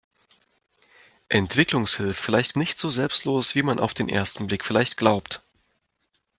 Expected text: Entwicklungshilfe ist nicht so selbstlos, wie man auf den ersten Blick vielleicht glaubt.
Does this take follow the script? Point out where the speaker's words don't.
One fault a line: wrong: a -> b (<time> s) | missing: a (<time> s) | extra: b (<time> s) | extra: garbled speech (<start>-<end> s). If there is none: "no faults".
wrong: ist -> vielleicht (2.2 s)